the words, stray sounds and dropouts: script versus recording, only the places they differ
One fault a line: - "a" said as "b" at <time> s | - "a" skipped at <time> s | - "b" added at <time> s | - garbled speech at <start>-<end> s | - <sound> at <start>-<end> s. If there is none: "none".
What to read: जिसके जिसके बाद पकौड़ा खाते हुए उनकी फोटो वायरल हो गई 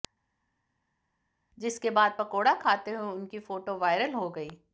- "जिसके" skipped at 1.9 s